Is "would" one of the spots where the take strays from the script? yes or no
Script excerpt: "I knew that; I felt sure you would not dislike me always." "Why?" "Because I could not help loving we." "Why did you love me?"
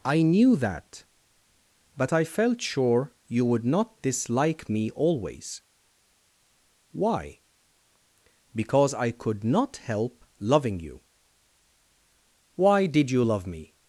no